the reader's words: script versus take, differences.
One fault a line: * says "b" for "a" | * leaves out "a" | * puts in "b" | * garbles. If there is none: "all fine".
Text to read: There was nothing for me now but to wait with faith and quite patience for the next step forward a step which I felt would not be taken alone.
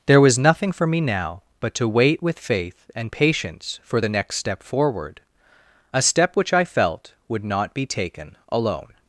* leaves out "quite"